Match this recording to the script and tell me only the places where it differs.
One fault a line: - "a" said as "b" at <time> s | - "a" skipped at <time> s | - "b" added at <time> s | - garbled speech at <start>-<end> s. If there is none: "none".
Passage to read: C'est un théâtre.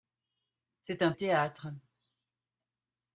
none